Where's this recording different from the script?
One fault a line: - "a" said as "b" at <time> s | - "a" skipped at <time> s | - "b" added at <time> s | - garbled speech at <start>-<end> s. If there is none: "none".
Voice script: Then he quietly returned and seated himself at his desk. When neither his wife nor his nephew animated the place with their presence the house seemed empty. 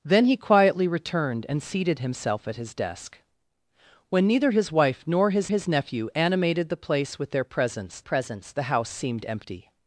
- "his" added at 5.5 s
- "presence" added at 8.0 s